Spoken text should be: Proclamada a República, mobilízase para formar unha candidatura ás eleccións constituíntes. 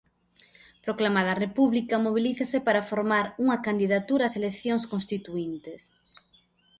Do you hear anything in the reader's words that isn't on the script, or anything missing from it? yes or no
no